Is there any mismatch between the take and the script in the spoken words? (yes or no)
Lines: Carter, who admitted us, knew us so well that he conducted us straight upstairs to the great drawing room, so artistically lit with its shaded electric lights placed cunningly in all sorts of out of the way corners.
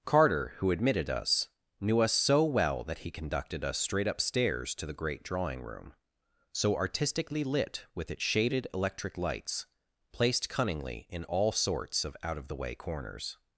no